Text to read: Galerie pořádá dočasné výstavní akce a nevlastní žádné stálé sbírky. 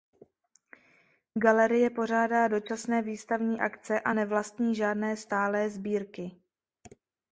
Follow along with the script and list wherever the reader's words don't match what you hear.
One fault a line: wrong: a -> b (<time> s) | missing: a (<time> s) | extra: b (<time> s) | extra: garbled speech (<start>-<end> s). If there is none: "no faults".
no faults